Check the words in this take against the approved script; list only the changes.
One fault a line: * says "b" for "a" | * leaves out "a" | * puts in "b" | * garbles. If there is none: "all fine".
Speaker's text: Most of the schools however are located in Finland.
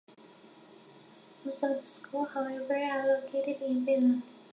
all fine